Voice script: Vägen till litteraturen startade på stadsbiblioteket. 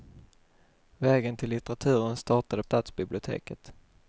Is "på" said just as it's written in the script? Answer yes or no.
no